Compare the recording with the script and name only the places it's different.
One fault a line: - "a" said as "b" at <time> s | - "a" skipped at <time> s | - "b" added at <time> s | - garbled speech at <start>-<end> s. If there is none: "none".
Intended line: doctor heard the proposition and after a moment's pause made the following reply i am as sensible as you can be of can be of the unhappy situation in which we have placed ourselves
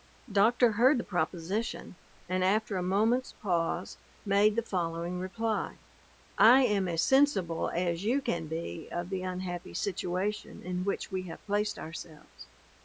- "can be of" skipped at 9.1 s